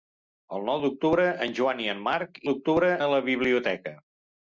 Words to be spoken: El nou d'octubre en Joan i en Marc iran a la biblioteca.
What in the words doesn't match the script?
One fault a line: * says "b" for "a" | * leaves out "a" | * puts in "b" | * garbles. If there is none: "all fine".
* says "d'octubre" for "iran"